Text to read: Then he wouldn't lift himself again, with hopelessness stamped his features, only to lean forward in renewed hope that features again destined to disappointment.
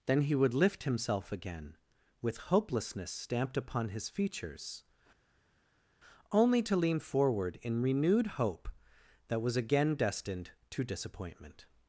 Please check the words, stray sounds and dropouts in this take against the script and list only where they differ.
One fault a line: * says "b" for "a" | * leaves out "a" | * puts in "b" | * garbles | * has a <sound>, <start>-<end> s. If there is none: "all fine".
* says "would" for "wouldn't"
* puts in "upon"
* says "was" for "features"